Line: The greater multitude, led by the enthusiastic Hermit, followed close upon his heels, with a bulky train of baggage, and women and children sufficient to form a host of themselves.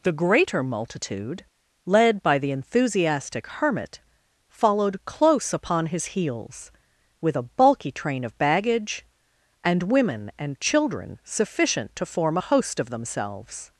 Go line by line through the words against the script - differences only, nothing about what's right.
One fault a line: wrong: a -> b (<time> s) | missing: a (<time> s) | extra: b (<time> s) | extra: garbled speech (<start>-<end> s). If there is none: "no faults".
no faults